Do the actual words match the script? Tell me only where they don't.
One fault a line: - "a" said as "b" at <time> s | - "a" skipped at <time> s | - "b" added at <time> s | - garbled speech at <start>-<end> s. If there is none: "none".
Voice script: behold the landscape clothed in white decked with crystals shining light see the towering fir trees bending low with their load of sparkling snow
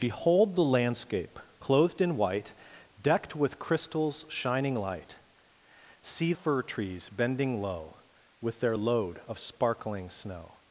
- "the towering" skipped at 6.3 s